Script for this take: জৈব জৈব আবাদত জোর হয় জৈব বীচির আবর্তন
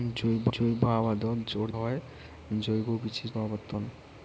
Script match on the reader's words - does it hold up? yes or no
yes